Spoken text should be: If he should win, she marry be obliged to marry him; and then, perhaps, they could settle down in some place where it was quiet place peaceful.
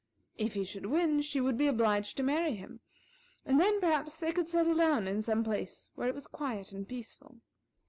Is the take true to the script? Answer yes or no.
no